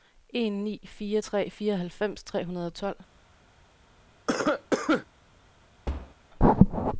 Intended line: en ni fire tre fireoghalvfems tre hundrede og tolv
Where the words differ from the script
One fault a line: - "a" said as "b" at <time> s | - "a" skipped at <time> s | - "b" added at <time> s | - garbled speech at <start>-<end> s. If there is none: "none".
none